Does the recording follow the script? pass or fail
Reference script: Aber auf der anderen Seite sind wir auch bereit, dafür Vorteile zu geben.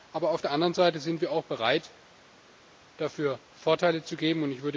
pass